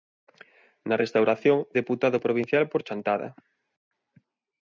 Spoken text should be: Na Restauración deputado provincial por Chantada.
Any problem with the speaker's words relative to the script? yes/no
no